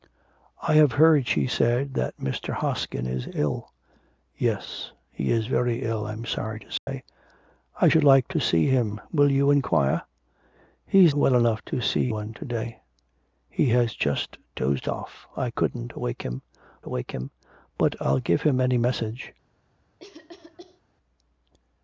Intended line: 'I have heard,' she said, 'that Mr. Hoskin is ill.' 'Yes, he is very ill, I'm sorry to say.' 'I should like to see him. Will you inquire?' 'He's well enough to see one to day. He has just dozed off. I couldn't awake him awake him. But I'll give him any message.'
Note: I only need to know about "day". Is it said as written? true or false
true